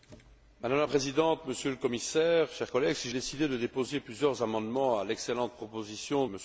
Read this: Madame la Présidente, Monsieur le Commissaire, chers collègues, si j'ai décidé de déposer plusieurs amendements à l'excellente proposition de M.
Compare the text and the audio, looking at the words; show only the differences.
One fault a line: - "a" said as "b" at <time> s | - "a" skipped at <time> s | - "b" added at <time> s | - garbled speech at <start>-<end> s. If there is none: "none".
- "j'ai" skipped at 3.1 s
- "de" skipped at 6.3 s